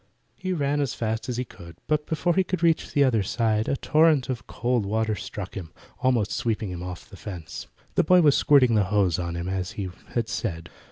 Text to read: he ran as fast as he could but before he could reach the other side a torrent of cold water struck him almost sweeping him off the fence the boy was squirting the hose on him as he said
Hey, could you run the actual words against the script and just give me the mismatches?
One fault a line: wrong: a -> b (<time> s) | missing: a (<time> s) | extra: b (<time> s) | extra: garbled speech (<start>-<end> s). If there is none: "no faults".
extra: had (10.2 s)